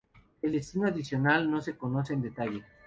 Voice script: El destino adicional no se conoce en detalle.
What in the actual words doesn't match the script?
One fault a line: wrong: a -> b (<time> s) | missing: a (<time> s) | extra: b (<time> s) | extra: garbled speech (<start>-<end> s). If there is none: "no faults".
no faults